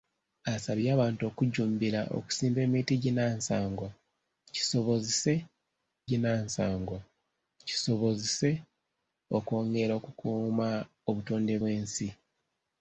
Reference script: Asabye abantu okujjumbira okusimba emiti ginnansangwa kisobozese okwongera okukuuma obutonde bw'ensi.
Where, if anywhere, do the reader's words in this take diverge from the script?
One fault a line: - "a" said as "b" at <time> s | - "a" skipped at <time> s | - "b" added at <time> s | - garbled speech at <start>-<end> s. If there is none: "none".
- "ginnansangwa kisobozese" added at 6.1 s